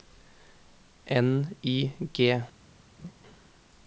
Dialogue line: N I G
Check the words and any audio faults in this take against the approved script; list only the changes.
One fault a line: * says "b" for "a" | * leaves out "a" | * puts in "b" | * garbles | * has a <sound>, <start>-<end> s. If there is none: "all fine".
* has a laugh, 3.0-3.1 s